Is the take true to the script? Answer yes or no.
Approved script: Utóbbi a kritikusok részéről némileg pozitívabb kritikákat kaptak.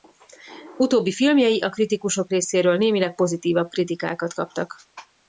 no